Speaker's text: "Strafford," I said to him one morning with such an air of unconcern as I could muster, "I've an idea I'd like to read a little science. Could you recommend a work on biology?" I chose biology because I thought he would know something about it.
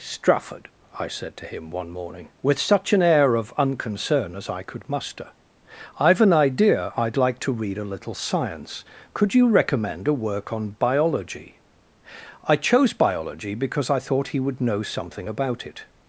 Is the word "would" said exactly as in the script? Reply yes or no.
yes